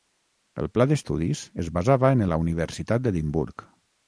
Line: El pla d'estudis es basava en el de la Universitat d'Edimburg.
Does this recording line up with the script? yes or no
no